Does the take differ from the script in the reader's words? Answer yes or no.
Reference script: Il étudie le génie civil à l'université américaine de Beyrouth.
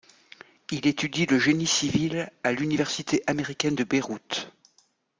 no